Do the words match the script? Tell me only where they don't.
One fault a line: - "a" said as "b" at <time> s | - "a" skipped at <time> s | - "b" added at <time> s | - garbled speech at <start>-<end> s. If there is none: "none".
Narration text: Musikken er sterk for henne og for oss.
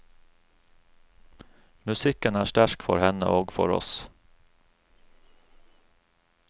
none